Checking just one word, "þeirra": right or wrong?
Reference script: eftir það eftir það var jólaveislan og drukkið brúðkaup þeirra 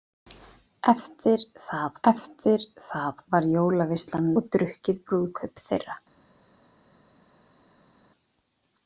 right